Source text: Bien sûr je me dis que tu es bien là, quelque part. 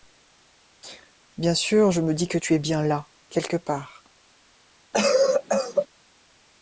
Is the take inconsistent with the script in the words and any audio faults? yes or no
yes